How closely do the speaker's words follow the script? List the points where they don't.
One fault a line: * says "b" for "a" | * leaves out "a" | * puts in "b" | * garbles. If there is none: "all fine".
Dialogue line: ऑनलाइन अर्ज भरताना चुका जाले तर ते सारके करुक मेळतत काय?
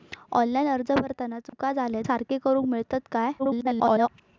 * leaves out "तर ते"
* garbles